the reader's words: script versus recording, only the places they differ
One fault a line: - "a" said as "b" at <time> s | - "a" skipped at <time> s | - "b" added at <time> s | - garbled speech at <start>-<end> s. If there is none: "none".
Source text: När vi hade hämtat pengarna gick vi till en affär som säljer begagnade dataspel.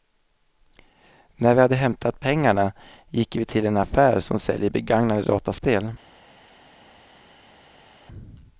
none